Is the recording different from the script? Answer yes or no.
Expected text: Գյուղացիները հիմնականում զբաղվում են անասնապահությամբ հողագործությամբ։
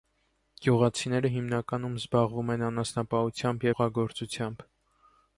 no